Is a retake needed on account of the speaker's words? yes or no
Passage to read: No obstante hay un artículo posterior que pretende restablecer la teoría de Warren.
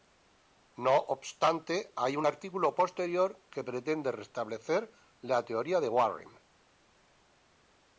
no